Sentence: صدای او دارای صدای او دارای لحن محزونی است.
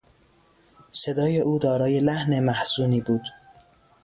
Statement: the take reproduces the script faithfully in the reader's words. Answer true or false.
false